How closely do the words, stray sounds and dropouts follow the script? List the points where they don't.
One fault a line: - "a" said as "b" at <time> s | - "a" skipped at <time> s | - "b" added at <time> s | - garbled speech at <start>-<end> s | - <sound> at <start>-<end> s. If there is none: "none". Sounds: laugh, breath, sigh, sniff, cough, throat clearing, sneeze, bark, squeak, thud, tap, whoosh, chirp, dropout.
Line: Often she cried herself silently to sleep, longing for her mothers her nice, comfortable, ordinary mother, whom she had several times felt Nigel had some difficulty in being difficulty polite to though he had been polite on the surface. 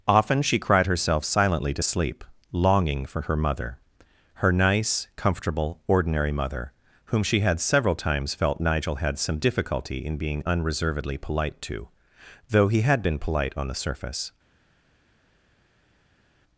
- "mothers" said as "mother" at 3.4 s
- "difficulty" said as "unreservedly" at 10.4 s